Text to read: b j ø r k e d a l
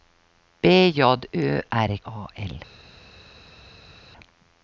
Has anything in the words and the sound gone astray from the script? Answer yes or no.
yes